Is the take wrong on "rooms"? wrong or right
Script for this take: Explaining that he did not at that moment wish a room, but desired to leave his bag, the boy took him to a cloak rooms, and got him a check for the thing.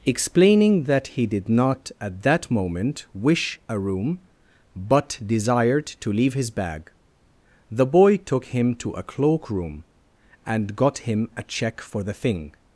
wrong